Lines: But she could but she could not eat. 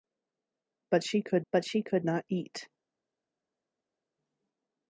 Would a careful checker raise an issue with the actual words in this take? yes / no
no